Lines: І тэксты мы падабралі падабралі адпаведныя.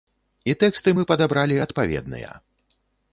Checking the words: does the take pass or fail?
fail